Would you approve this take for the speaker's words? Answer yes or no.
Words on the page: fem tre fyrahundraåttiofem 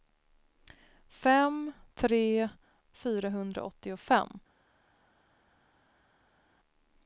yes